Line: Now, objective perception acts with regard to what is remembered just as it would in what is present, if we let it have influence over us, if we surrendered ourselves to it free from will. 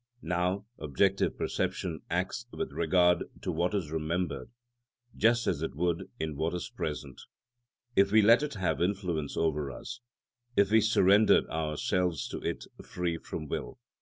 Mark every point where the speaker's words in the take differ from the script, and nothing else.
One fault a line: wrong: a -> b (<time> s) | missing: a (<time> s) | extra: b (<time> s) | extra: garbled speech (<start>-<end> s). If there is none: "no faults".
no faults